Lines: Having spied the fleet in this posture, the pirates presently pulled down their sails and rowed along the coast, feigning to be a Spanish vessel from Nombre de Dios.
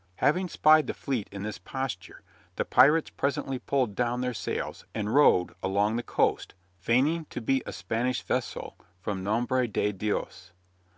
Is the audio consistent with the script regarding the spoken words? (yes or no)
yes